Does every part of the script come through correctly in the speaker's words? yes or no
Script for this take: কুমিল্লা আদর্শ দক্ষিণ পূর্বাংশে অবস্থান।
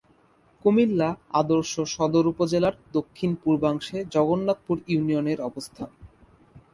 no